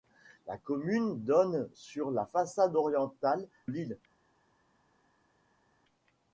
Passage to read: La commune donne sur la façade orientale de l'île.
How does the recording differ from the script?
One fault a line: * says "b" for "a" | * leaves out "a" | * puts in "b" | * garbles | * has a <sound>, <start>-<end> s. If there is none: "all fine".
* leaves out "de"